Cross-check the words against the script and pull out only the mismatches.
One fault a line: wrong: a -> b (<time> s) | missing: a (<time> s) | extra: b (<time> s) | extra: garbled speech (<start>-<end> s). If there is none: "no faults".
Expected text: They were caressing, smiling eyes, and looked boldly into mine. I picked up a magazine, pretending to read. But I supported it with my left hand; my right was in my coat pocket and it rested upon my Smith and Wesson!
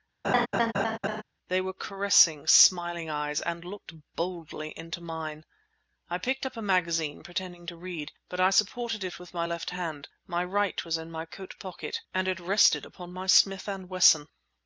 no faults